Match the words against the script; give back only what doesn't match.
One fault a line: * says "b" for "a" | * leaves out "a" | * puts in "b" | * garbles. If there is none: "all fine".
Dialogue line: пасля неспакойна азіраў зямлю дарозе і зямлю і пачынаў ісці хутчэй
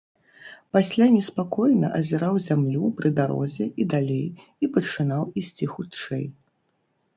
* puts in "пры"
* says "далей" for "зямлю"